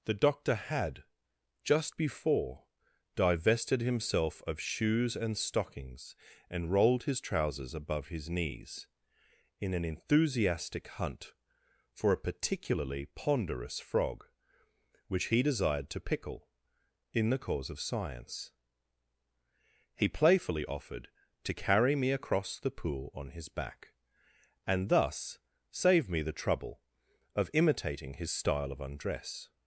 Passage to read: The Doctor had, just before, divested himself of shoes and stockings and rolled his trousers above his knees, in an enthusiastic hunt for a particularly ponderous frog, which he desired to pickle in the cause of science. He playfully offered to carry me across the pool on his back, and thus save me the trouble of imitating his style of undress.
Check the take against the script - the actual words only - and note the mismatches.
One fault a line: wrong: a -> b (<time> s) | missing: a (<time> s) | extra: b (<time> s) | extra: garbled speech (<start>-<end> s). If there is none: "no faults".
no faults